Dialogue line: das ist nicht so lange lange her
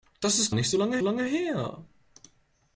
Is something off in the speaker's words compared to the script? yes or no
no